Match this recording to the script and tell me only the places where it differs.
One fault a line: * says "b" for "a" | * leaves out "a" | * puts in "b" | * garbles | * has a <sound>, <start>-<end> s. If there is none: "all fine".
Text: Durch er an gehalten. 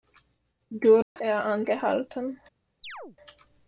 * has a dropout, 1.0-1.2 s
* has a chirp, 2.8-3.2 s